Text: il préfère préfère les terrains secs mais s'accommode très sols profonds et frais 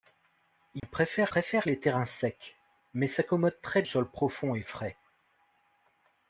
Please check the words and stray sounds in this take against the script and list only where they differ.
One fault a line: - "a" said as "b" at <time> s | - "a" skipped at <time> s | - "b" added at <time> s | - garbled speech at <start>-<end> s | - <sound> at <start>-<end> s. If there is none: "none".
- dropout at 0.8-0.8 s